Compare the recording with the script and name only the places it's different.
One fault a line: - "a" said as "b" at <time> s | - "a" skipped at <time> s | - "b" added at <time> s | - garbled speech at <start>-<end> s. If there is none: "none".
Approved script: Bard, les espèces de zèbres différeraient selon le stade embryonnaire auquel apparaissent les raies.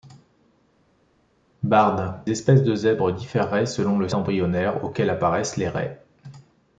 - "les" skipped at 2.2 s
- "stade" skipped at 4.1 s